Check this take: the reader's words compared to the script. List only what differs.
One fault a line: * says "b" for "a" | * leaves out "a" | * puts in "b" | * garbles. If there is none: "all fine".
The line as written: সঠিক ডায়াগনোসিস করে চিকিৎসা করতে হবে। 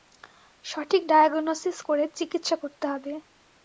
all fine